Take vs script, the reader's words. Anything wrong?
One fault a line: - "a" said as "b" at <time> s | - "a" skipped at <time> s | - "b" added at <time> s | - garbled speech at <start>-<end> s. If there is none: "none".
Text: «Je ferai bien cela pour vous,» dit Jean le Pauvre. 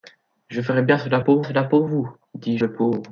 - "cela pour" added at 1.4 s
- "Jean" skipped at 2.6 s